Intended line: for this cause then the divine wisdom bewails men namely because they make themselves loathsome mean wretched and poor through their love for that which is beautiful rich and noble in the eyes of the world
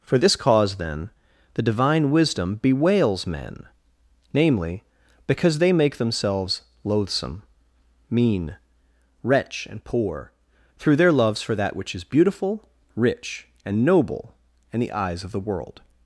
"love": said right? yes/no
no